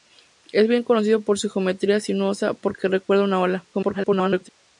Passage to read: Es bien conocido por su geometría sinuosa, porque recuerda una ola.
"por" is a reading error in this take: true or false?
false